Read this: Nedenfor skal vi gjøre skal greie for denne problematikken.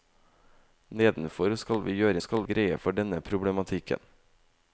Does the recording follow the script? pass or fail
pass